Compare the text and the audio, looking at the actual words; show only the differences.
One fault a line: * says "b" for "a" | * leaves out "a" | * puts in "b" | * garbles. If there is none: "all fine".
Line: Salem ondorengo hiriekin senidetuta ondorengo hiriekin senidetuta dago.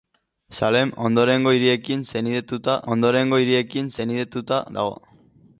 all fine